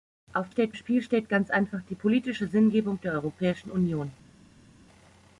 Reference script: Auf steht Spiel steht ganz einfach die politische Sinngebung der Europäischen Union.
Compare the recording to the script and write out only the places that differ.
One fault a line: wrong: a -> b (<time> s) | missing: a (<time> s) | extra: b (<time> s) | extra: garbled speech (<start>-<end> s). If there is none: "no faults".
no faults